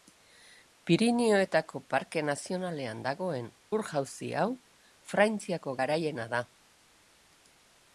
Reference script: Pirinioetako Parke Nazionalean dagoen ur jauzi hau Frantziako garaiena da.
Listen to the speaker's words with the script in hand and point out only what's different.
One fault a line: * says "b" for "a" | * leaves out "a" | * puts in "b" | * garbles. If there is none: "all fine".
all fine